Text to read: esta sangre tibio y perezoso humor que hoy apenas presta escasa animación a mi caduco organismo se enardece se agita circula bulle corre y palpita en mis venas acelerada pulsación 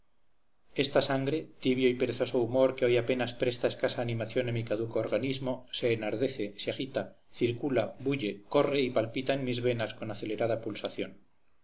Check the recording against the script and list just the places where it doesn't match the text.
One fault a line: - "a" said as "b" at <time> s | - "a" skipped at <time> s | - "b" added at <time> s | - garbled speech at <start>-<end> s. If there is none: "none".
- "con" added at 9.9 s